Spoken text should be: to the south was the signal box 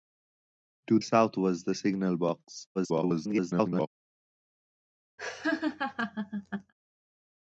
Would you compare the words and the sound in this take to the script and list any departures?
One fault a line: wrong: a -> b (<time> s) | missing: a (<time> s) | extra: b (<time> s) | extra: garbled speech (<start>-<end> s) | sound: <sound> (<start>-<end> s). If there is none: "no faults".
missing: the (1.0 s)
extra: garbled speech (2.7-3.9 s)
sound: laugh (5.2-6.7 s)